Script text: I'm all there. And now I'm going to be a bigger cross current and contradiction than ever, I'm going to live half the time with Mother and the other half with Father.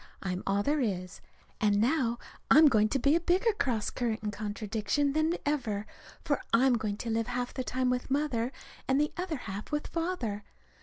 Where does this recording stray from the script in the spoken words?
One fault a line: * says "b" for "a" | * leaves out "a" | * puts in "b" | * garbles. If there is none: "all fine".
* puts in "is"
* puts in "for"